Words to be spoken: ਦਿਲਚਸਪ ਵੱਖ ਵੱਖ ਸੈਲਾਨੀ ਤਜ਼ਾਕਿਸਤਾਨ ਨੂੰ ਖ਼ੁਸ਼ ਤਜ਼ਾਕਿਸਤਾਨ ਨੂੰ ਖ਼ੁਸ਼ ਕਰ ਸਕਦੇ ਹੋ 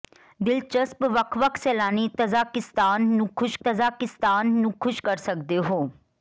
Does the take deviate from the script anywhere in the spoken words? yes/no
no